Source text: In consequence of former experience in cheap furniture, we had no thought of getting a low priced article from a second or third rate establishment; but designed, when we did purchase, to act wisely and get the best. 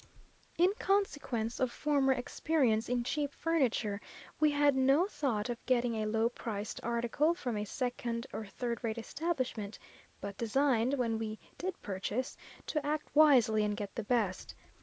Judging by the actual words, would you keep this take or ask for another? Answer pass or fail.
pass